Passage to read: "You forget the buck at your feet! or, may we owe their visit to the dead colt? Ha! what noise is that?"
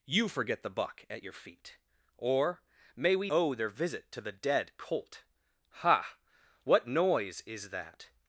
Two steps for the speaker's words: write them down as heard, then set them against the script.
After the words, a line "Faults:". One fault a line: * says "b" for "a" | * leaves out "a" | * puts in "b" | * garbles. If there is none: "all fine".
"You forget the buck at your feet! or, may we owe their visit to the dead colt? Ha! what noise is that?"
Faults:
all fine